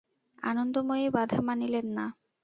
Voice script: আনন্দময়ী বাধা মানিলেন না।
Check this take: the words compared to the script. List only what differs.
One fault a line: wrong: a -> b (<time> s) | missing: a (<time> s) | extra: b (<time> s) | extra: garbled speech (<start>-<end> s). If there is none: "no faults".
no faults